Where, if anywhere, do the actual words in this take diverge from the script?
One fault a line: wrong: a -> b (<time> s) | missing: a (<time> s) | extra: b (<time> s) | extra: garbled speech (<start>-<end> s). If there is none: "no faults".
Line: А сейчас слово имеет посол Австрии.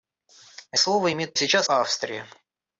missing: сейчас (0.8 s)
wrong: посол -> сейчас (1.4 s)